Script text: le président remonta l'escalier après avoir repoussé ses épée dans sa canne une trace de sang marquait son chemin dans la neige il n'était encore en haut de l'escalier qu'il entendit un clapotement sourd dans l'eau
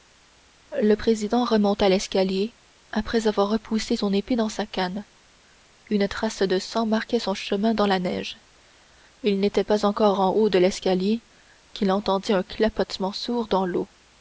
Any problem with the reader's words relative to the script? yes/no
yes